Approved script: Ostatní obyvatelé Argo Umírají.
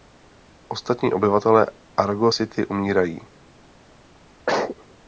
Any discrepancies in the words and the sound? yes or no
yes